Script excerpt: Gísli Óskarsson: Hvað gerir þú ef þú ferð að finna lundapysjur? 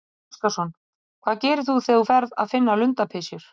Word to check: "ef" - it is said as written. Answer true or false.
false